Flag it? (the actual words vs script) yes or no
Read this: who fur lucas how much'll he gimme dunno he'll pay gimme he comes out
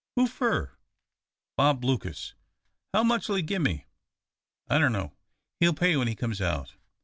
yes